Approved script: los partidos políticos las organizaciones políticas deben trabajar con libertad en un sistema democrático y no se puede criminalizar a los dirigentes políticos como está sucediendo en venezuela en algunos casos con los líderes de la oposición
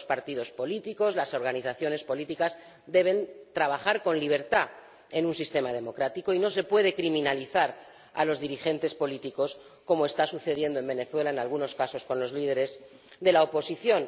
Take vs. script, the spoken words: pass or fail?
pass